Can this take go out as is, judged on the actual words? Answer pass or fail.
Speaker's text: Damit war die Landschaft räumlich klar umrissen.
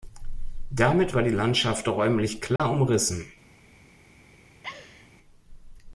pass